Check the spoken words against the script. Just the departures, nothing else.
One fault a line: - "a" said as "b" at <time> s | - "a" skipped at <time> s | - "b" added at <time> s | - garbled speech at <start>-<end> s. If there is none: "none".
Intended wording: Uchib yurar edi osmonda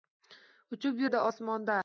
- "yurar" skipped at 1.1 s